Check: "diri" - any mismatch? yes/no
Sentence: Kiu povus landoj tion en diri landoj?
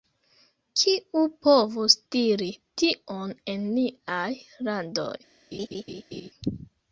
yes